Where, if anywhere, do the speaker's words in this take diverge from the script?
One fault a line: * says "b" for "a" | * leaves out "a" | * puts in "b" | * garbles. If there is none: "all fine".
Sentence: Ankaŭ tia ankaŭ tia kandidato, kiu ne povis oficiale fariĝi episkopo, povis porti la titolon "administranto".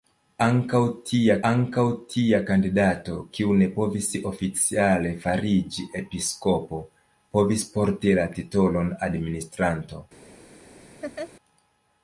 all fine